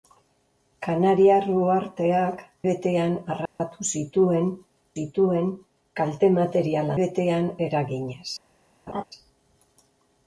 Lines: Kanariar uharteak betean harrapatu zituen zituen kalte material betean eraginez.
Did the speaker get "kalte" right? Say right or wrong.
right